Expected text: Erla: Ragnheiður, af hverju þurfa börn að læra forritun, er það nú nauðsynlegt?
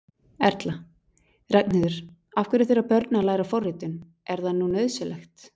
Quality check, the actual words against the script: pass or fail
pass